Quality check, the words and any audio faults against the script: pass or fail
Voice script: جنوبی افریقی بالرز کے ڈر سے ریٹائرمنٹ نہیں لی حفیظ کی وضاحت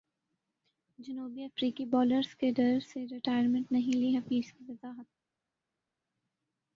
pass